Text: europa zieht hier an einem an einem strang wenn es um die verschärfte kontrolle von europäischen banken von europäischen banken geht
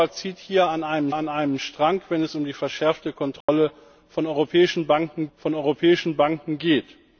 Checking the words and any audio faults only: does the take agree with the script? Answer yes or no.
no